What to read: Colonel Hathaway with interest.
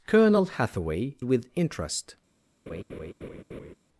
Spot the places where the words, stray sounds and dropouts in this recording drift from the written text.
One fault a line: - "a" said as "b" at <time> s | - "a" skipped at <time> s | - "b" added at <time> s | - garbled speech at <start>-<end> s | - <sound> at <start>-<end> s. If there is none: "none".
- laugh at 2.7-3.7 s